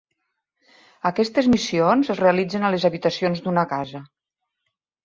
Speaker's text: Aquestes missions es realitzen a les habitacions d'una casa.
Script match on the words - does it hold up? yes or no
yes